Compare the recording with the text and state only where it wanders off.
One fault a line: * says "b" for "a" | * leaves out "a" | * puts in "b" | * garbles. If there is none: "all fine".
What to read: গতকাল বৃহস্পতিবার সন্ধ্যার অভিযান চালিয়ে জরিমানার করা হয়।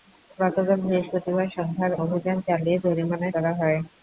all fine